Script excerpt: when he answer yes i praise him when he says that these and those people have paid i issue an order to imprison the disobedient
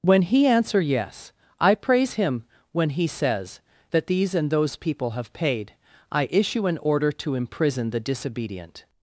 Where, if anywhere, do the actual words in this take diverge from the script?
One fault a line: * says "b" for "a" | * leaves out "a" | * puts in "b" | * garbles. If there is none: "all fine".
all fine